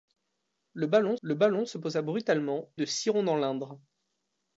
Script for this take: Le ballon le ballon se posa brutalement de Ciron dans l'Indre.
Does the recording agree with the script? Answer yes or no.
yes